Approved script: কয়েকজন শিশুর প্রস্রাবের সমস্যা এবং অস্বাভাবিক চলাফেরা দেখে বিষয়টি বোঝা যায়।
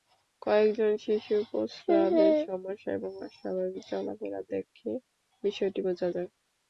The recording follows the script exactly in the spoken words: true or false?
true